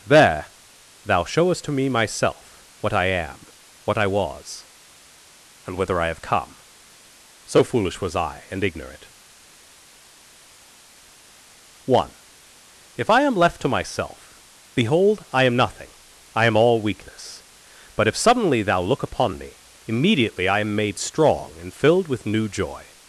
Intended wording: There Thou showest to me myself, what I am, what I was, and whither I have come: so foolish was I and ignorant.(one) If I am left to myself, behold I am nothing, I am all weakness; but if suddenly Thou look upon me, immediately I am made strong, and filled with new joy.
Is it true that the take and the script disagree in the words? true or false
false